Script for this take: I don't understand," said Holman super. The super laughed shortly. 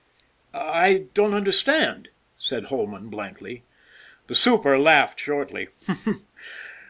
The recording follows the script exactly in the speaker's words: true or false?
false